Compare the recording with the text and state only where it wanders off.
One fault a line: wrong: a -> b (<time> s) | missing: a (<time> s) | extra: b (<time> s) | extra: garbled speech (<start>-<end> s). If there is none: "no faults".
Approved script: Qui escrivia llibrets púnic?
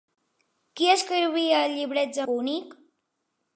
no faults